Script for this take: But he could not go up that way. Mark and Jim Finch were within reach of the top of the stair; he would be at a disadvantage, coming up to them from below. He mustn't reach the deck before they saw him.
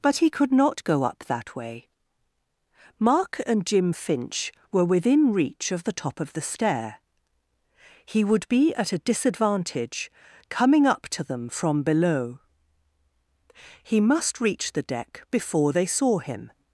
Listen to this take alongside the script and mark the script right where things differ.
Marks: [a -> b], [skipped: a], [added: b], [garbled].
But he could not go up that way. Mark and Jim Finch were within reach of the top of the stair; he would be at a disadvantage, coming up to them from below. He [mustn't -> must] reach the deck before they saw him.